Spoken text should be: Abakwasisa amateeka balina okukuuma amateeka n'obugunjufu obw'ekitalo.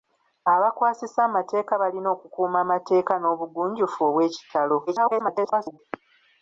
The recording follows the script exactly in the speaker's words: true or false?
false